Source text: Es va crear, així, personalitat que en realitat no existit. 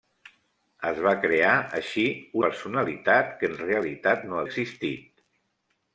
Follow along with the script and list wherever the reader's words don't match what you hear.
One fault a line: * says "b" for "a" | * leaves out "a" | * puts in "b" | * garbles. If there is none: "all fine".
all fine